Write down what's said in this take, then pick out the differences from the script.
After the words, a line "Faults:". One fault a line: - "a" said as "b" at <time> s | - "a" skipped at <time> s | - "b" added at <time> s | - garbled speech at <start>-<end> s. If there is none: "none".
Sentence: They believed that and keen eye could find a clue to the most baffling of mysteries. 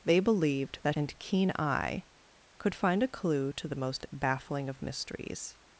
They believed that and keen eye could find a clue to the most baffling of mysteries.
Faults:
none